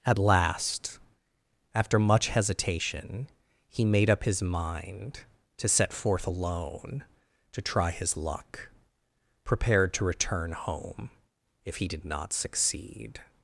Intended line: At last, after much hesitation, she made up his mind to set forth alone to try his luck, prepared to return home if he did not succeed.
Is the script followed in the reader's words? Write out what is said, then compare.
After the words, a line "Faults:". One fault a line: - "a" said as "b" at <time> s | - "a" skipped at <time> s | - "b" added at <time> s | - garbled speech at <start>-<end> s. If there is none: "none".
At last, after much hesitation, he made up his mind to set forth alone to try his luck, prepared to return home if he did not succeed.
Faults:
- "she" said as "he" at 3.7 s